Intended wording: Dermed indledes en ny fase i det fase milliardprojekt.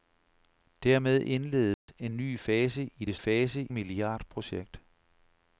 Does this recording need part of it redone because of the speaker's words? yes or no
no